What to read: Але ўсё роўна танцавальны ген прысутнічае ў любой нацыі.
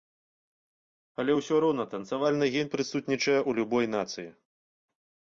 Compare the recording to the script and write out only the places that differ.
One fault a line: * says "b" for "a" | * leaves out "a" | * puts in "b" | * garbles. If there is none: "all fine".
all fine